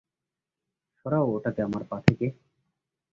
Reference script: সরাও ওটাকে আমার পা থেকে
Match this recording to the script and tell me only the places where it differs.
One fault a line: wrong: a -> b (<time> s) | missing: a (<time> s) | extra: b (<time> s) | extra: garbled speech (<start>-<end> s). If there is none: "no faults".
no faults